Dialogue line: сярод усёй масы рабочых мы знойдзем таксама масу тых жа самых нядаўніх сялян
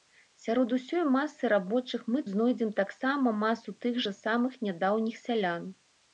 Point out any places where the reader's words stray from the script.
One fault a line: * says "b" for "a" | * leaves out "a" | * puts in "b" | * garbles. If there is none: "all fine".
all fine